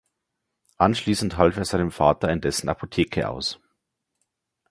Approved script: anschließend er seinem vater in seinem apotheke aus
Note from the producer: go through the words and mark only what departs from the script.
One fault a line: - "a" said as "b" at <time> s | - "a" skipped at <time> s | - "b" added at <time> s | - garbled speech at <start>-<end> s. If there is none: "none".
- "half" added at 1.4 s
- "seinem" said as "dessen" at 2.4 s